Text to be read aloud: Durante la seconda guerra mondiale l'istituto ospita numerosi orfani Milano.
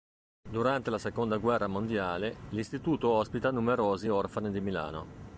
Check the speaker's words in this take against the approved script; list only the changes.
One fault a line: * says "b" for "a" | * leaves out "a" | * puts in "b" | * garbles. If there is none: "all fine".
* puts in "di"